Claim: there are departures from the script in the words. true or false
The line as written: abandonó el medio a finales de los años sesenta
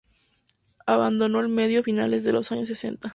false